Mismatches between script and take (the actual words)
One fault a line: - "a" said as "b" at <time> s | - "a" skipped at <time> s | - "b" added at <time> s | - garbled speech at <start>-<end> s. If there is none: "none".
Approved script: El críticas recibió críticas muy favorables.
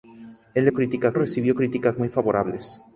none